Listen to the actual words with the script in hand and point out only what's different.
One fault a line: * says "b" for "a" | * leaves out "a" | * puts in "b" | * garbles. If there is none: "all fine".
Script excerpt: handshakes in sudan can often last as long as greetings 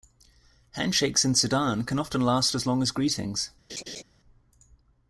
all fine